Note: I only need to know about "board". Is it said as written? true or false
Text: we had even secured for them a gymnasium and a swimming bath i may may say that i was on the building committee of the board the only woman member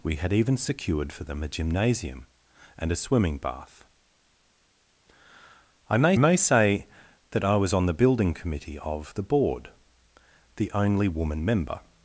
true